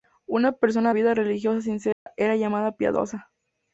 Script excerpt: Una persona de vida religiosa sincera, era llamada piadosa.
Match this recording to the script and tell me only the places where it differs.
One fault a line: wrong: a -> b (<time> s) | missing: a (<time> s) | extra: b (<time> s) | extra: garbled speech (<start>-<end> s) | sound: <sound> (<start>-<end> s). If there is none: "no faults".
missing: de (0.9 s)
sound: dropout (1.9-2.1 s)